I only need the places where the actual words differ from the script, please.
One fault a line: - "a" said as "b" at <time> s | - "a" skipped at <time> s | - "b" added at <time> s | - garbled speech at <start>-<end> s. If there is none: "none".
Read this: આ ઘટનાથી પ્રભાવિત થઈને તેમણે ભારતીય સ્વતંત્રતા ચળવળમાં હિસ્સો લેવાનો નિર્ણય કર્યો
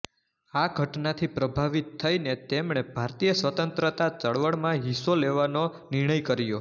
none